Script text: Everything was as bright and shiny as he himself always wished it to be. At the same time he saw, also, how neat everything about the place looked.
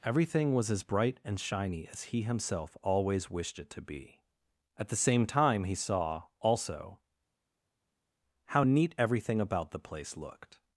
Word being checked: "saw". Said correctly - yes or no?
yes